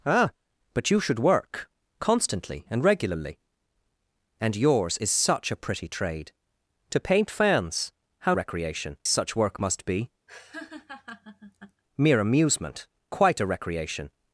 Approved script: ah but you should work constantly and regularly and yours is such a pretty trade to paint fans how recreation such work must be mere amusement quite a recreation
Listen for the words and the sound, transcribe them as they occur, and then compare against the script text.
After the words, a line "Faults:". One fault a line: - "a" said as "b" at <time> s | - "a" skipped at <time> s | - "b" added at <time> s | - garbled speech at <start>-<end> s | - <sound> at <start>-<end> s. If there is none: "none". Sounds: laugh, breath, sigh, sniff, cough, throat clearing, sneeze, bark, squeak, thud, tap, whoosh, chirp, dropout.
ah but you should work constantly and regularly and yours is such a pretty trade to paint fans how recreation such work must be mere amusement quite a recreation
Faults:
- laugh at 10.3-11.8 s